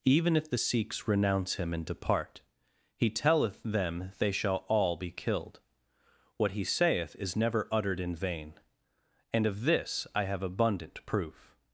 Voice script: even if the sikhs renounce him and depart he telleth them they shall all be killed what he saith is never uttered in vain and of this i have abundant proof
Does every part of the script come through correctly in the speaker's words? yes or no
yes